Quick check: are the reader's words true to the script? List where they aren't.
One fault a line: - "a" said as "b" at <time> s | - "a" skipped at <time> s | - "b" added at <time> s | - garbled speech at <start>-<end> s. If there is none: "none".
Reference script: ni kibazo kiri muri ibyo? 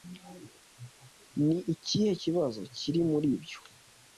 - "ikihe" added at 1.7 s